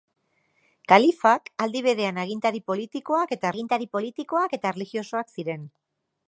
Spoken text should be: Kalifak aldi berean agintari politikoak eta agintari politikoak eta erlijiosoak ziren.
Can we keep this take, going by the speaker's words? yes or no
yes